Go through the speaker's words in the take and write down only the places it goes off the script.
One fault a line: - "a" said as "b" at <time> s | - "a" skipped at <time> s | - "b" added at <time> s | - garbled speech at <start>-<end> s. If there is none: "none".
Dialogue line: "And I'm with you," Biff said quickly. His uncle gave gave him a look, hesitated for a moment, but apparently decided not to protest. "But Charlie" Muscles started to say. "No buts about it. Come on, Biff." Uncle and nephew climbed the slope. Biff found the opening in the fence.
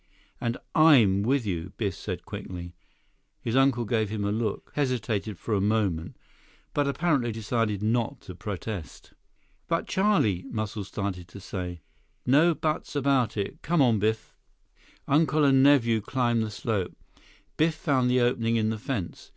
- "gave" skipped at 4.1 s